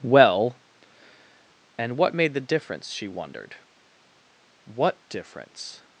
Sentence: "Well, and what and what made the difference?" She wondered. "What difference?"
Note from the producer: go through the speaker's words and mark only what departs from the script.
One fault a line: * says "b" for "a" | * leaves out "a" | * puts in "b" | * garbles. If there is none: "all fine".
* leaves out "and what"